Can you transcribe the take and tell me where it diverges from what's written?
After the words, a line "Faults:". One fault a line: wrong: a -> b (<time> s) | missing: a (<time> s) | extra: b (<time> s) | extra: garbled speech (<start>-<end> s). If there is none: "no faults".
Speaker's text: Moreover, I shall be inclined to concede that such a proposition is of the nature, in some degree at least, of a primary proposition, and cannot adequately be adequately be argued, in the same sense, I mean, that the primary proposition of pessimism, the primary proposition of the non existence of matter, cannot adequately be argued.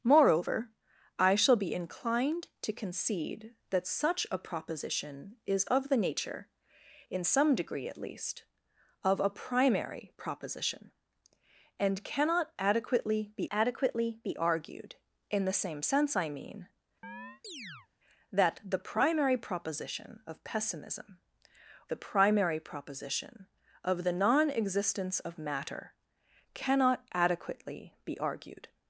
Moreover, I shall be inclined to concede that such a proposition is of the nature, in some degree at least, of a primary proposition, and cannot adequately be adequately be argued, in the same sense, I mean, that the primary proposition of pessimism, the primary proposition of the non existence of matter, cannot adequately be argued.
Faults:
no faults